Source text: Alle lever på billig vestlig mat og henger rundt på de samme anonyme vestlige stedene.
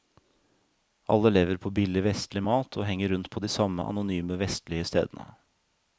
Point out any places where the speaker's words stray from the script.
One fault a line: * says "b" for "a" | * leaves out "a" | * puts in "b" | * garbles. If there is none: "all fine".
all fine